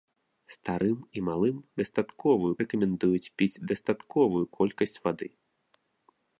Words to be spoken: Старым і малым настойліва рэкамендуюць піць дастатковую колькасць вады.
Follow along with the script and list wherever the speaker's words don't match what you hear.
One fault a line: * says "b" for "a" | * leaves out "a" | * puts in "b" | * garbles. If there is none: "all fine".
* says "дастатковую" for "настойліва"